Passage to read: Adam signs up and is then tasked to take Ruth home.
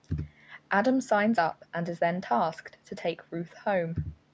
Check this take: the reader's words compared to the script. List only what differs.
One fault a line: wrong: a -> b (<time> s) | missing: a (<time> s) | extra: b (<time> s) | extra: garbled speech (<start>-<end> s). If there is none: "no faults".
no faults